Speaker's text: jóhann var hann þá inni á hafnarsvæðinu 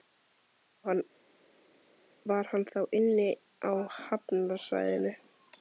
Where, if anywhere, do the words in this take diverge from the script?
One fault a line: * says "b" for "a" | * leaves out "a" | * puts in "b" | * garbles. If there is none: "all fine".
all fine